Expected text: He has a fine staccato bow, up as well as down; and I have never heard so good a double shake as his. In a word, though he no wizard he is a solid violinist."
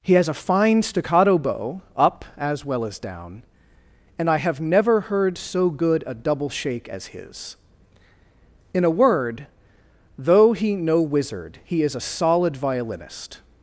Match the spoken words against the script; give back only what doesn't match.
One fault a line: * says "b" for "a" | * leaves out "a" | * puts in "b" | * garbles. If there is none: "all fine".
all fine